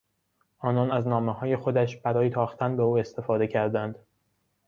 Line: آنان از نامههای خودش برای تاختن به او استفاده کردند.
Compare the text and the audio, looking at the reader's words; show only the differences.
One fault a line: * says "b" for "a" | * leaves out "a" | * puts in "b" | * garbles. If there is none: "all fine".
all fine